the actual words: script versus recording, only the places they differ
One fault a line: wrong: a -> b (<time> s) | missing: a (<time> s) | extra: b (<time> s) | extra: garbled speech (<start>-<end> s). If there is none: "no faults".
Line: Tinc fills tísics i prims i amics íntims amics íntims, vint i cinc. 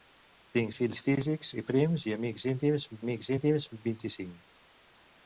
no faults